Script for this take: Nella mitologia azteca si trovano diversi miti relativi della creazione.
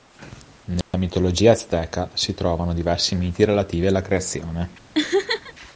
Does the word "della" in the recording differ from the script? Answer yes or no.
yes